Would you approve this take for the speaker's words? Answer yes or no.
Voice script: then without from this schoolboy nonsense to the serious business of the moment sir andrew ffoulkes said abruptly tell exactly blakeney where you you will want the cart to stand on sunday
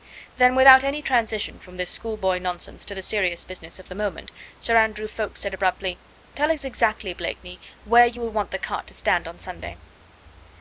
no